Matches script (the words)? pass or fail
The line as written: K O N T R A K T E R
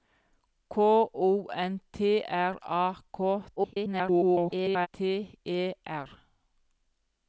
fail